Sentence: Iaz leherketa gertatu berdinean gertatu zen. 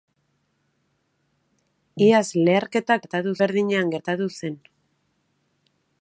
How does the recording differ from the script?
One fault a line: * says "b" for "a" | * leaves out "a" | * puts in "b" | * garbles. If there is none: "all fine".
all fine